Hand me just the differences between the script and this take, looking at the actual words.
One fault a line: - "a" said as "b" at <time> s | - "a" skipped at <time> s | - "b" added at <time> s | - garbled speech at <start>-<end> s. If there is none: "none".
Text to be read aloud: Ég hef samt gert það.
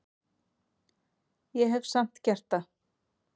none